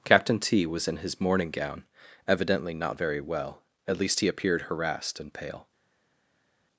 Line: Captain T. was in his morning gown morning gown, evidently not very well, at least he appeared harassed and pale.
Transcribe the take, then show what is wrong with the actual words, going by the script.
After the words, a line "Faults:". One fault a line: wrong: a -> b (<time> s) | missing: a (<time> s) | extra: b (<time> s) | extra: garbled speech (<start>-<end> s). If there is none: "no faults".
Captain T. was in his morning gown, evidently not very well, at least he appeared harassed and pale.
Faults:
missing: morning gown (1.8 s)